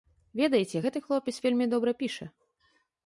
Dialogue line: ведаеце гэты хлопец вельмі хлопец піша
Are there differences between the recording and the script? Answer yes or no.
yes